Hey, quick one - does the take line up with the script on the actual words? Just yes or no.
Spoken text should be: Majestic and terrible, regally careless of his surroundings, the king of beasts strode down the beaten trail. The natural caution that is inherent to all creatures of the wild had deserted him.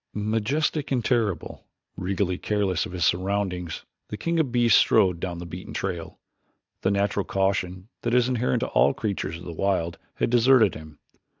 yes